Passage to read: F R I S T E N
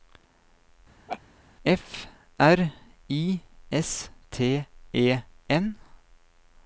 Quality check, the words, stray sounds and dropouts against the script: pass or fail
fail